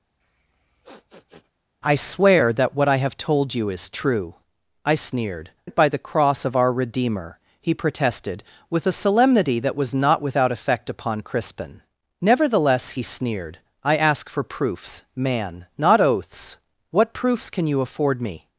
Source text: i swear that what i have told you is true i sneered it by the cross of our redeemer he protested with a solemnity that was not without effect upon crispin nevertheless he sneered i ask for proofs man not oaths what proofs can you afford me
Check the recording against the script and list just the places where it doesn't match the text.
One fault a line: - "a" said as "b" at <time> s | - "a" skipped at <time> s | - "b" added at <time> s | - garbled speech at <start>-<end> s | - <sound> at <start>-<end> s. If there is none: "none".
- sniff at 0.2-1.5 s